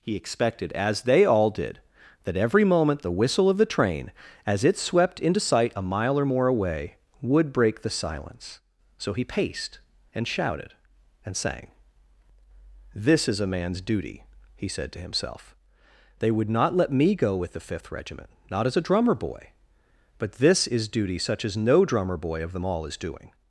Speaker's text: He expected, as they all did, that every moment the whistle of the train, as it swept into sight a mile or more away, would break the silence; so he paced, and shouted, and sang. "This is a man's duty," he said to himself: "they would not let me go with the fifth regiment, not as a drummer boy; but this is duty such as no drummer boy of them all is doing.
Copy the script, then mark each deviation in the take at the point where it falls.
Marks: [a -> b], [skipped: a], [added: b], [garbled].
He expected, as they all did, that every moment the whistle of the train, as it swept into sight a mile or more away, would break the silence; so he paced, and shouted, and sang. "This is a man's duty," he said to himself: "they would not let me go with the fifth regiment, not as a drummer boy; but this is duty such as no drummer boy of them all is doing.